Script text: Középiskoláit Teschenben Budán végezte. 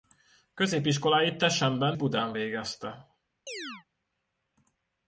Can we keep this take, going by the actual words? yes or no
yes